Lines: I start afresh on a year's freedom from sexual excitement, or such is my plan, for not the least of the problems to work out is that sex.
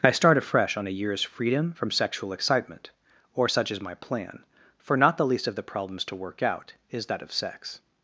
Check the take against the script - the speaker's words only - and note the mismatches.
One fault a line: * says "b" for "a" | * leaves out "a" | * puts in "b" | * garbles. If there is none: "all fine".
* puts in "of"